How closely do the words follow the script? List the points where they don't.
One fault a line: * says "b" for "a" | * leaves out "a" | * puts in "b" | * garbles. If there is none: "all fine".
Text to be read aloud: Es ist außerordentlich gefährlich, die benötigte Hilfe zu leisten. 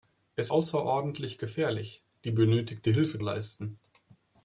* leaves out "ist"
* leaves out "zu"